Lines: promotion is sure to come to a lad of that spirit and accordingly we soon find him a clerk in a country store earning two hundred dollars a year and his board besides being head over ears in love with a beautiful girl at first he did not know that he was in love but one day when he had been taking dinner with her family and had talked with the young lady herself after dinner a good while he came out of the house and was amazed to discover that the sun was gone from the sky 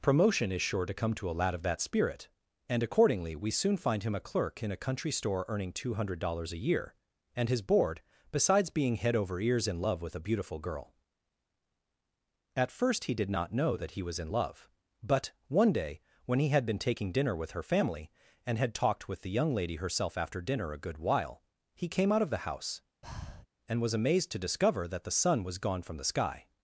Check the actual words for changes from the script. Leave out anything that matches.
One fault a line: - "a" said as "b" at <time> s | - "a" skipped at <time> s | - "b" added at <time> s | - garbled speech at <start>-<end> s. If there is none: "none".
none